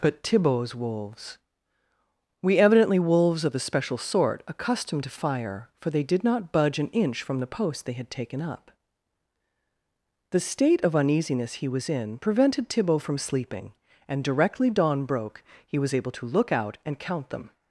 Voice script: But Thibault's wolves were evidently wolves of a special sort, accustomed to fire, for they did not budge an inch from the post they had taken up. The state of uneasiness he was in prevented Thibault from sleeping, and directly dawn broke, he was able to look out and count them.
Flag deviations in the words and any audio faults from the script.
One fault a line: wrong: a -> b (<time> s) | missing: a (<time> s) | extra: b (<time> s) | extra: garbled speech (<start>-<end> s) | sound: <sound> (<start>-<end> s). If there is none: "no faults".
wrong: were -> we (2.4 s)